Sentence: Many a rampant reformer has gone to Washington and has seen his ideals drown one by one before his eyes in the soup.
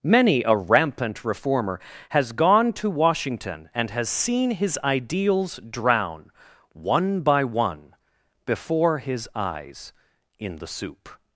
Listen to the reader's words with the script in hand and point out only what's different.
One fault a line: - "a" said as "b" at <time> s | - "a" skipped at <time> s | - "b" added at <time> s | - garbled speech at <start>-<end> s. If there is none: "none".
none